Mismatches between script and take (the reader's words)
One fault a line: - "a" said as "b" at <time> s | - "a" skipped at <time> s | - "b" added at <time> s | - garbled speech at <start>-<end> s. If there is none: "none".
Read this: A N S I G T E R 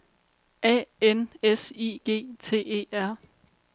none